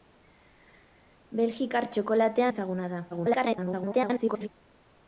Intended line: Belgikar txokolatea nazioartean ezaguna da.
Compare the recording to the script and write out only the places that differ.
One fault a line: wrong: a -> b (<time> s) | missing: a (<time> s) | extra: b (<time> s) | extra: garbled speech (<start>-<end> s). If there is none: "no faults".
missing: nazioartean (2.5 s)
extra: garbled speech (3.1-4.5 s)